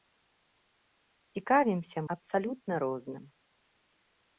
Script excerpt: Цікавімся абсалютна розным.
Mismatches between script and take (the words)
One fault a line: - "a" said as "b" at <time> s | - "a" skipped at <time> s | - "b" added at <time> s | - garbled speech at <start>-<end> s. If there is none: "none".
none